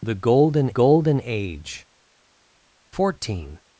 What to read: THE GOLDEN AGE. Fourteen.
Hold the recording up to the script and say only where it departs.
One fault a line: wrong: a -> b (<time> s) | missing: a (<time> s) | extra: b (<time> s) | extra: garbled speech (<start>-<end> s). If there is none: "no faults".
extra: GOLDEN (0.7 s)